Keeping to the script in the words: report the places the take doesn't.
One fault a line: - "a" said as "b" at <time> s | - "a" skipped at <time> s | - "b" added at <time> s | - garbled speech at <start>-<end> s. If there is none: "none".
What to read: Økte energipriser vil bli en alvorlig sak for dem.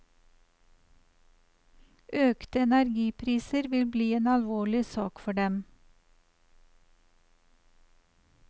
none